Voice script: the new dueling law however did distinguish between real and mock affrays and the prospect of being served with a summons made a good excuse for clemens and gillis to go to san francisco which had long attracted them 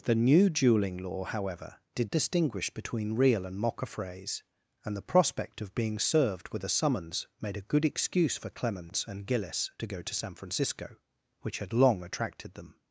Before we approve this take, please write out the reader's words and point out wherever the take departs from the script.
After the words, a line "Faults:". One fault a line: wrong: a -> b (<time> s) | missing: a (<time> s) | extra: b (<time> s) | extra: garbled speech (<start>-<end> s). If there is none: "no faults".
the new dueling law however did distinguish between real and mock affrays and the prospect of being served with a summons made a good excuse for clemens and gillis to go to san francisco which had long attracted them
Faults:
no faults